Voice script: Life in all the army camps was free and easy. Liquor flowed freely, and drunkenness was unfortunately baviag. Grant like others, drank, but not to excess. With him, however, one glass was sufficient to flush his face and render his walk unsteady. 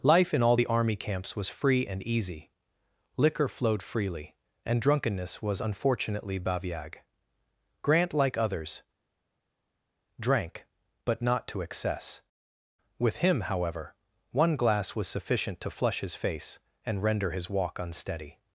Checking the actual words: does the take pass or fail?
pass